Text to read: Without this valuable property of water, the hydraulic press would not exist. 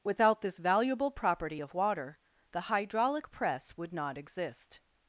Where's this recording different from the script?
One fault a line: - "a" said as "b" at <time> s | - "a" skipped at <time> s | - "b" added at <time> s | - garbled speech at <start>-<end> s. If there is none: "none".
none